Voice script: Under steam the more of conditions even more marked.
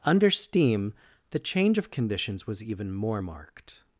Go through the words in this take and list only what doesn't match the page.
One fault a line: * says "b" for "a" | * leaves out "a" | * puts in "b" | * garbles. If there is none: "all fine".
* says "change" for "more"
* puts in "was"